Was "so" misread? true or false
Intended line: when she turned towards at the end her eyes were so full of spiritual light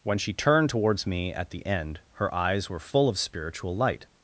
true